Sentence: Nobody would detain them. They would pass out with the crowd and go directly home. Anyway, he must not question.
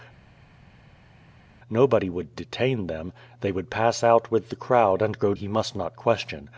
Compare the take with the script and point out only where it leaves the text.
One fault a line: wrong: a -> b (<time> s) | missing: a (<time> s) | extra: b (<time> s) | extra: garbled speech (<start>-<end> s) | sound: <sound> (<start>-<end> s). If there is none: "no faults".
missing: directly home Anyway (5.3 s)